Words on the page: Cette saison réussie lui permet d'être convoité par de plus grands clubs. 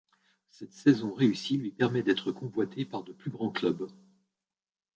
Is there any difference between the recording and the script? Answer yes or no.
no